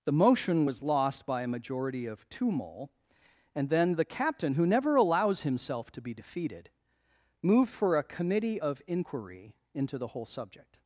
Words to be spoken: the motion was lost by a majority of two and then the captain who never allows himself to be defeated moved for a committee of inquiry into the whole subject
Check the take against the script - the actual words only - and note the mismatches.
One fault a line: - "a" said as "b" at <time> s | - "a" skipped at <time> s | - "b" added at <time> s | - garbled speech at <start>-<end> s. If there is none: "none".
- "mole" added at 2.5 s